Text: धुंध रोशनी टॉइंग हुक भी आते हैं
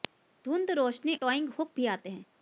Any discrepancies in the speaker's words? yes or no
no